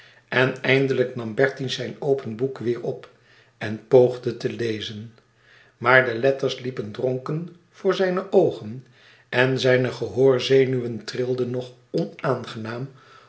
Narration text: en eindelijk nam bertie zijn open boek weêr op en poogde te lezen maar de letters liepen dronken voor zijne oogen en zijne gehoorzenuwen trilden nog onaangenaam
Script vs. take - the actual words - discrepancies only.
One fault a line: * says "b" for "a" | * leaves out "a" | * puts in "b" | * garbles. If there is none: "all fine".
all fine